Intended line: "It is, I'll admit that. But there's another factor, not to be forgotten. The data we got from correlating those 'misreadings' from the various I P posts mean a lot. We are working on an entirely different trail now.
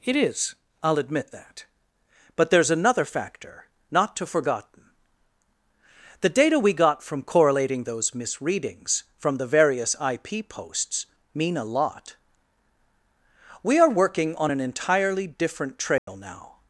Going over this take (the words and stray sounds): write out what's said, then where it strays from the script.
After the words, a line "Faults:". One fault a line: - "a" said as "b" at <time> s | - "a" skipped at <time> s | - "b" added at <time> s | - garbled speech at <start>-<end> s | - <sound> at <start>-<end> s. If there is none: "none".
"It is, I'll admit that. But there's another factor, not to forgotten. The data we got from correlating those 'misreadings' from the various I P posts mean a lot. We are working on an entirely different trail now.
Faults:
- "be" skipped at 4.2 s
- dropout at 16.0-16.1 s